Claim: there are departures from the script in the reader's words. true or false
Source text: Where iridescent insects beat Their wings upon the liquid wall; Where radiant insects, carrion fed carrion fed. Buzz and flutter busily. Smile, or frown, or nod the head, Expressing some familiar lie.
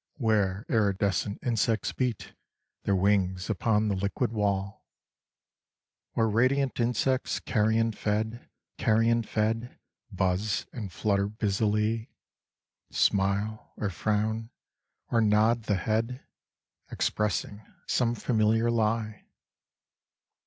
false